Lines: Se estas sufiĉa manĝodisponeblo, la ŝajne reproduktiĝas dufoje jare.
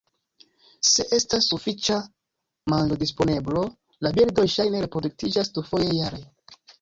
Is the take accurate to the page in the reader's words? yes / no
no